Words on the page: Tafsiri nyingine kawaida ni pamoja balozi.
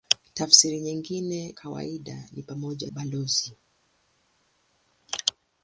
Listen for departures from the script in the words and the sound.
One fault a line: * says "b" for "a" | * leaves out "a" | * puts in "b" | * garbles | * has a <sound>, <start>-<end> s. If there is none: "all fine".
all fine